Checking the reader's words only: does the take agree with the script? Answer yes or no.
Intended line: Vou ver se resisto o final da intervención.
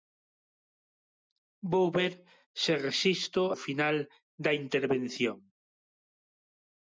yes